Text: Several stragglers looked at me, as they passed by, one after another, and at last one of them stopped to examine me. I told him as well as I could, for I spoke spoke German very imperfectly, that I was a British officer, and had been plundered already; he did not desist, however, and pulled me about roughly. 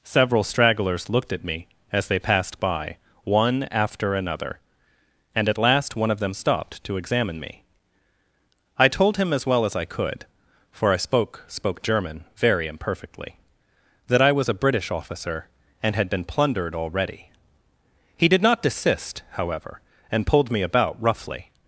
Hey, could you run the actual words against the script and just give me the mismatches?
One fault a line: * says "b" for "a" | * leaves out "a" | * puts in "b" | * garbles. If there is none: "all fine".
all fine